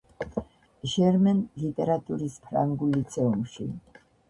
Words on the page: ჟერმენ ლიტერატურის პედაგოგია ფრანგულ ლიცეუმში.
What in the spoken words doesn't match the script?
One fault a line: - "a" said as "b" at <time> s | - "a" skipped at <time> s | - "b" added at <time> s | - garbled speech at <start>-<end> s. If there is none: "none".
- "პედაგოგია" skipped at 2.4 s